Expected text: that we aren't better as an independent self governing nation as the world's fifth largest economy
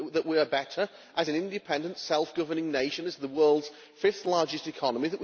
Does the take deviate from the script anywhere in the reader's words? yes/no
yes